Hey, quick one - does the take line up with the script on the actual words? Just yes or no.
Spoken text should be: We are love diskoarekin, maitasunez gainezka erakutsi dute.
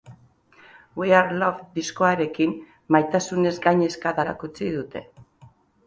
yes